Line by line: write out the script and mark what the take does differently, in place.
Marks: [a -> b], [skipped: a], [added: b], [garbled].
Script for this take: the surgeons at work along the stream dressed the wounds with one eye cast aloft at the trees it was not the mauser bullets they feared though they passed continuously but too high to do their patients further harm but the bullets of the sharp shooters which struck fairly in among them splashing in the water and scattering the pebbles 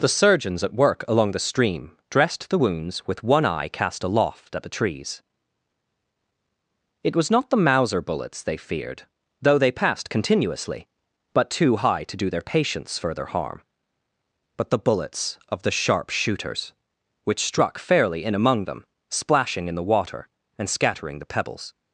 the surgeons at work along the stream dressed the wounds with one eye cast aloft at the trees it was not the mauser bullets they feared though they passed continuously but too high to do their patients further harm but the bullets of the sharp shooters which struck fairly in among them splashing in the water and scattering the pebbles